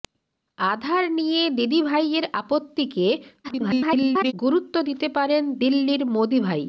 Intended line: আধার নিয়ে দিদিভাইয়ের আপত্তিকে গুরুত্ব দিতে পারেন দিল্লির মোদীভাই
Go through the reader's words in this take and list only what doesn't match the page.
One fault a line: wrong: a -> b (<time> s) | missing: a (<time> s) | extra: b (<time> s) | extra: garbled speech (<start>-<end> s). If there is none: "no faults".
extra: garbled speech (3.4-4.3 s)